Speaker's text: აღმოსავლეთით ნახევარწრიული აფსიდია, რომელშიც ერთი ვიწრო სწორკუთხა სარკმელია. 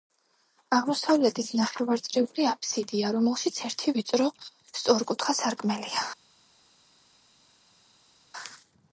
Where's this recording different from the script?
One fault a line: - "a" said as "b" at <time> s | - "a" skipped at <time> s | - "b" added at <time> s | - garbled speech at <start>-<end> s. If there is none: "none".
none